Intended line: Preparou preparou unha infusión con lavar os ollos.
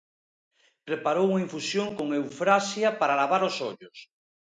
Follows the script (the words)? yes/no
no